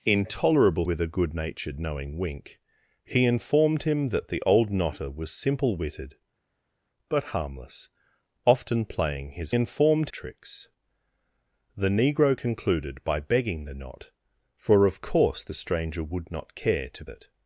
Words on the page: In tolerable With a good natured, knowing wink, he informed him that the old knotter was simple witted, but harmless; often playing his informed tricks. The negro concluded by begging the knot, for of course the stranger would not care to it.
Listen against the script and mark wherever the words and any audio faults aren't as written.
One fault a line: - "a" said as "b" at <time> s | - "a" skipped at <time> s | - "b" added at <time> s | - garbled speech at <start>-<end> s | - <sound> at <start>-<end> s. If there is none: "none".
none